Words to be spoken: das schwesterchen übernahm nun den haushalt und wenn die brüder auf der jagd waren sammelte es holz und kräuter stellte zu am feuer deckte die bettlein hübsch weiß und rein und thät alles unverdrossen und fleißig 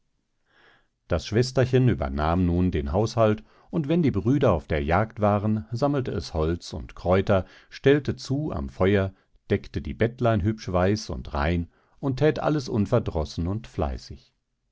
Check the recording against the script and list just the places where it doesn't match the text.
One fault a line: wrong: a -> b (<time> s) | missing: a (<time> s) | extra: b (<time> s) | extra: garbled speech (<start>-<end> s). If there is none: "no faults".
no faults